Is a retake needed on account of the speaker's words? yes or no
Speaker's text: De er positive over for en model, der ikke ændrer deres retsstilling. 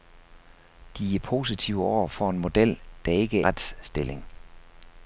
yes